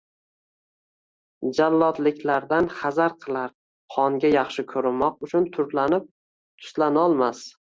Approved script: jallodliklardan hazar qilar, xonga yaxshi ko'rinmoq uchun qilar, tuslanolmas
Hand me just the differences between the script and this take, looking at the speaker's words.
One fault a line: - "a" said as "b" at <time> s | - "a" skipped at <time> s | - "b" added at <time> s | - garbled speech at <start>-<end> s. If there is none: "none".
- "qilar" said as "turlanib" at 5.6 s